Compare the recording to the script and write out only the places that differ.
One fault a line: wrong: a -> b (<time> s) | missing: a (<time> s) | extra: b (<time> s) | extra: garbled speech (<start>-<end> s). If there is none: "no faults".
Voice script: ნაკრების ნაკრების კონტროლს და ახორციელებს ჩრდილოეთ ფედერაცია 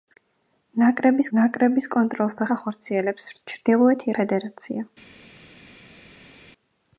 no faults